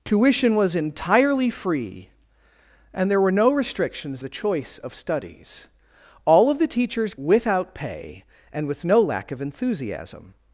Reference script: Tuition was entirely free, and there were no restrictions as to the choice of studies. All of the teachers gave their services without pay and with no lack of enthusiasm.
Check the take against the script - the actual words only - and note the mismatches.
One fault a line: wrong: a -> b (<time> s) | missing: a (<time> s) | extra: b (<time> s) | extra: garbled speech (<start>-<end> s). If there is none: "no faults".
missing: as to (4.2 s)
missing: gave their services (7.1 s)